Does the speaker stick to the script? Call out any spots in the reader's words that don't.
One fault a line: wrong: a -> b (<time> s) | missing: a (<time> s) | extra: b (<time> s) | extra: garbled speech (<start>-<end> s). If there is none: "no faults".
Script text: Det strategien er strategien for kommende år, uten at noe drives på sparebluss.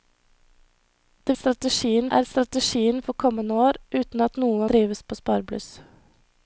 no faults